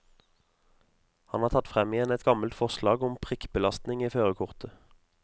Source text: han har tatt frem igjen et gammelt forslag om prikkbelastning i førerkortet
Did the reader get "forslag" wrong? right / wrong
right